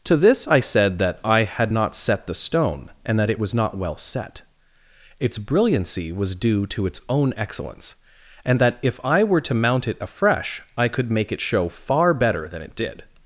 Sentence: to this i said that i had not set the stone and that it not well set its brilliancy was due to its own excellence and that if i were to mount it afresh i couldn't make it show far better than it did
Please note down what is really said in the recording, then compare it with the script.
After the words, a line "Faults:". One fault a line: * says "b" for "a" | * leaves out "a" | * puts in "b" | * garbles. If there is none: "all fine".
to this i said that i had not set the stone and that it was not well set its brilliancy was due to its own excellence and that if i were to mount it afresh i could make it show far better than it did
Faults:
* puts in "was"
* says "could" for "couldn't"